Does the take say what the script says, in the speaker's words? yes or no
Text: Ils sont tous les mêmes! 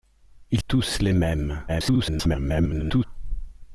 no